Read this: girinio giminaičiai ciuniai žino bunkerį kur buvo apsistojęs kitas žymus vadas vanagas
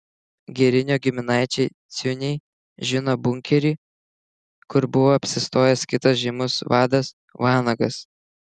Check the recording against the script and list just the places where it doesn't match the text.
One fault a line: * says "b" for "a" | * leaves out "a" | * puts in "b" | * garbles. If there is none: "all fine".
all fine